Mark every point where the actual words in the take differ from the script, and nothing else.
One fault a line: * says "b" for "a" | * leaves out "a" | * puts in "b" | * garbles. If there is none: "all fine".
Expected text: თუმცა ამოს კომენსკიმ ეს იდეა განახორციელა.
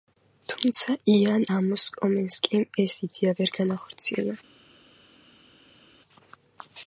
* puts in "იან"
* puts in "ვერ"